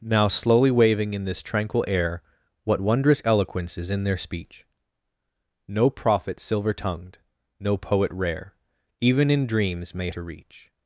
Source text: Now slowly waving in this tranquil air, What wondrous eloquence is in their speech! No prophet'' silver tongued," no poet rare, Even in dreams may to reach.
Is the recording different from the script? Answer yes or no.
no